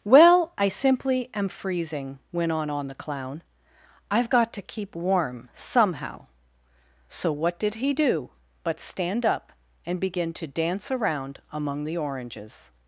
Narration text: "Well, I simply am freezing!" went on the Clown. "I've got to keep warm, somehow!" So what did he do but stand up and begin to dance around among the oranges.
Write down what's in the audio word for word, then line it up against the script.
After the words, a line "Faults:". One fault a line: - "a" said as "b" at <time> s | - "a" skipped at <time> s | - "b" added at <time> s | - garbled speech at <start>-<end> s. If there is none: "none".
"Well, I simply am freezing!" went on on the Clown. "I've got to keep warm, somehow!" So what did he do but stand up and begin to dance around among the oranges.
Faults:
- "on" added at 2.7 s